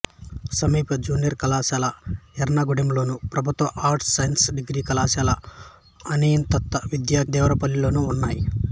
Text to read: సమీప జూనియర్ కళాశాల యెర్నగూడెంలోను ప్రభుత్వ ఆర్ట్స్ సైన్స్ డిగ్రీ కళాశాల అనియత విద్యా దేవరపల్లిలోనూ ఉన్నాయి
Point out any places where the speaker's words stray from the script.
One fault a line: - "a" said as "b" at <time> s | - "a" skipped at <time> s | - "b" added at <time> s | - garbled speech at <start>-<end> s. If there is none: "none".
none